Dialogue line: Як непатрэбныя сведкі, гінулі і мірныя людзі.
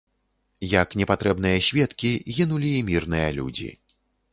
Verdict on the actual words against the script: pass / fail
pass